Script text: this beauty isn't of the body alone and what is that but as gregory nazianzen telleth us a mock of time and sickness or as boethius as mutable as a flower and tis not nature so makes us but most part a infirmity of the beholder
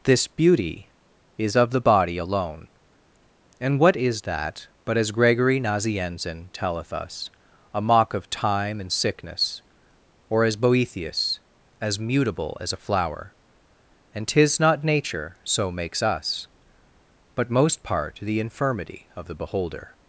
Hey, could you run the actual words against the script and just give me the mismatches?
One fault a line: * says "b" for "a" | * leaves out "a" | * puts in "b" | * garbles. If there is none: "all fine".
* says "is" for "isn't"
* says "the" for "a"